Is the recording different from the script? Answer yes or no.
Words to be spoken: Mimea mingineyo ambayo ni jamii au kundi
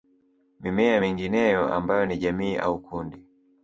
no